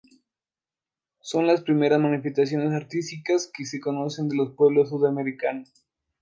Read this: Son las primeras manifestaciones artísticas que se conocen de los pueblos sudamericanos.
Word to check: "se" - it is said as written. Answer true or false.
true